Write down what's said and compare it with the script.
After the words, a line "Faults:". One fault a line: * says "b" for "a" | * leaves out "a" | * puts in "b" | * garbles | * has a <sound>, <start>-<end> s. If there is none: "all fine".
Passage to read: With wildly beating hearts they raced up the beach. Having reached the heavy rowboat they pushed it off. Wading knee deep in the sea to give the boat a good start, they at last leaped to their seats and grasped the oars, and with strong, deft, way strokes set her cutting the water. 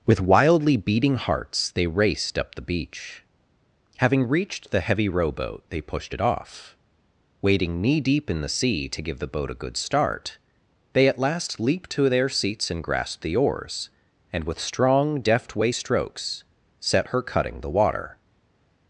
With wildly beating hearts they raced up the beach. Having reached the heavy rowboat they pushed it off. Wading knee deep in the sea to give the boat a good start, they at last leaped to their seats and grasped the oars, and with strong, deft, way strokes set her cutting the water.
Faults:
all fine